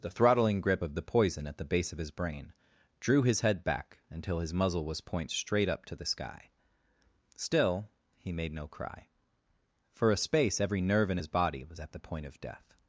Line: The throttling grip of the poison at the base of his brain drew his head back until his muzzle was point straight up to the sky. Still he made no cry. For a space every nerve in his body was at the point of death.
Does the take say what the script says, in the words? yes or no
yes